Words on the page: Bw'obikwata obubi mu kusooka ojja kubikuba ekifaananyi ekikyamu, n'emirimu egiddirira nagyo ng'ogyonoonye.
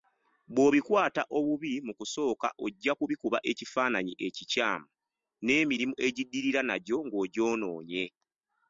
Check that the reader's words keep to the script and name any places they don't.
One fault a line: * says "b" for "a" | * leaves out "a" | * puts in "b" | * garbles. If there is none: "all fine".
all fine